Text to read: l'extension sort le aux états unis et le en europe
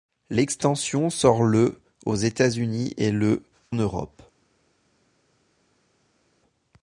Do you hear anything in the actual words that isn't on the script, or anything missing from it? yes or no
yes